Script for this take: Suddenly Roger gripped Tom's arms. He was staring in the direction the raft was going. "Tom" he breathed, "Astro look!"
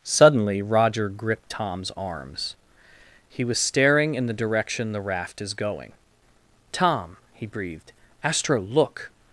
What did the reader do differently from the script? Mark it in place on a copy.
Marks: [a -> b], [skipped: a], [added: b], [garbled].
Suddenly Roger gripped Tom's arms. He was staring in the direction the raft [was -> is] going. "Tom" he breathed, "Astro look!"